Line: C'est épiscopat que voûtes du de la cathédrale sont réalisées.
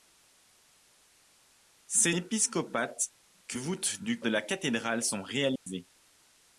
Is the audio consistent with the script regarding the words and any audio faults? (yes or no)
no